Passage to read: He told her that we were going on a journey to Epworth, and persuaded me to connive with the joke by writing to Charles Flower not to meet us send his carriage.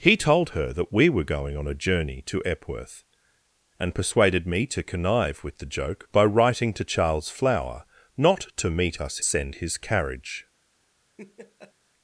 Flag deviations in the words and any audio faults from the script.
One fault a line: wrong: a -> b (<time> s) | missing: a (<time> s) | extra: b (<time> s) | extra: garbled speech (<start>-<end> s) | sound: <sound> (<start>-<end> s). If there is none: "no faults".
sound: laugh (11.2-11.7 s)